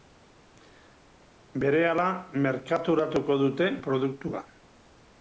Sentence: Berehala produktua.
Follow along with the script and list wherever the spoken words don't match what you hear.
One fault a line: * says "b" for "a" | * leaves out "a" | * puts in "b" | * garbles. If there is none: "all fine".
* puts in "merkaturatuko dute"